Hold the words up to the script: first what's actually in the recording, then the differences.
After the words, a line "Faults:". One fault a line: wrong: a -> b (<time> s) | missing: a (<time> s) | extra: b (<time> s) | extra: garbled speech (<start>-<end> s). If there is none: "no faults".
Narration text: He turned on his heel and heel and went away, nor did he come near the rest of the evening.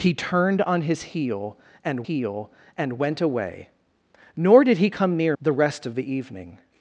He turned on his heel and heel and went away, nor did he come near the rest of the evening.
Faults:
no faults